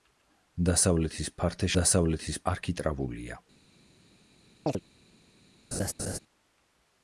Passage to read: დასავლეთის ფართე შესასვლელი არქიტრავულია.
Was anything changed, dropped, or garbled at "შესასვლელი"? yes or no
yes